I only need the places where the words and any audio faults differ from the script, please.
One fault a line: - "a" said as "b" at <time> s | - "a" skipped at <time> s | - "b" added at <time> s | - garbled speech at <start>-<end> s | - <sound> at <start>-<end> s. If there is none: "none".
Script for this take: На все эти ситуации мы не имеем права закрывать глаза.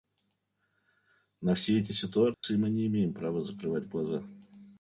- dropout at 2.3-2.4 s